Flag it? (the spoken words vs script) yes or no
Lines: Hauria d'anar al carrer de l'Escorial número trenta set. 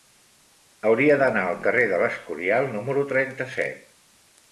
no